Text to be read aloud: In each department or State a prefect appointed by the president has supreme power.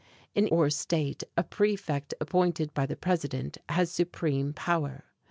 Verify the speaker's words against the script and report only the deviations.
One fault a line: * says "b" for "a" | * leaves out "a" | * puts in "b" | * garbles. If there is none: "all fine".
* leaves out "each department"